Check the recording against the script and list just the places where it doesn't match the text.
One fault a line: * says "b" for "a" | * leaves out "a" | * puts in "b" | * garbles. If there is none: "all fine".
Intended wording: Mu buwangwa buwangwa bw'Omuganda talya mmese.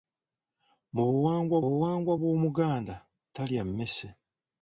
all fine